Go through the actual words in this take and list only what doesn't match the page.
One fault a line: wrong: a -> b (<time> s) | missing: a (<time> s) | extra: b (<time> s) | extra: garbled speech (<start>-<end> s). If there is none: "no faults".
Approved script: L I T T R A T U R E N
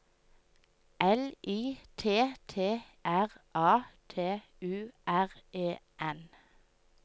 no faults